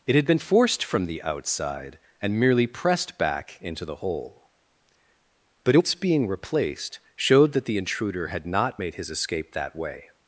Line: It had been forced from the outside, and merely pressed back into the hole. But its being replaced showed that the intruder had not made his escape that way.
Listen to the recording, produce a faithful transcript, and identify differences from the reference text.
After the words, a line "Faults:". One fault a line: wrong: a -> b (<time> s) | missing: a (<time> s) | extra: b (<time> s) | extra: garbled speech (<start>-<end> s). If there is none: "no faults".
It had been forced from the outside, and merely pressed back into the hole. But its being replaced showed that the intruder had not made his escape that way.
Faults:
no faults